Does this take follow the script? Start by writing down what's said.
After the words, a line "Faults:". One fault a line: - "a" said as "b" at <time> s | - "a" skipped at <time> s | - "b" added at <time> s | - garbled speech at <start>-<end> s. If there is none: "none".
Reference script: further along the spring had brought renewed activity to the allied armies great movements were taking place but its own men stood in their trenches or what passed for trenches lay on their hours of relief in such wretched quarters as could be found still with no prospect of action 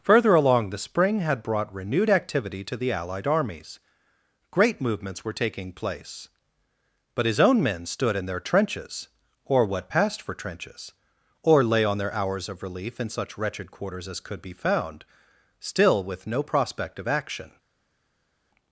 further along the spring had brought renewed activity to the allied armies great movements were taking place but his own men stood in their trenches or what passed for trenches or lay on their hours of relief in such wretched quarters as could be found still with no prospect of action
Faults:
- "its" said as "his" at 7.3 s
- "or" added at 11.4 s